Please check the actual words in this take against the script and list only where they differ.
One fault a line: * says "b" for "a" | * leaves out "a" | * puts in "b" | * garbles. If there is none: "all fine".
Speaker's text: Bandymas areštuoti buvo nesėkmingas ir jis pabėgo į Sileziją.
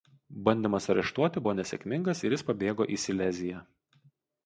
all fine